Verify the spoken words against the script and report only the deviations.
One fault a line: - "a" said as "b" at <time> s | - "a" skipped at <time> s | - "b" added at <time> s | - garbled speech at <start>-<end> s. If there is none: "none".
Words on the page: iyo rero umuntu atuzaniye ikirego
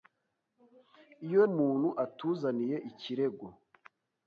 - "rero" skipped at 1.4 s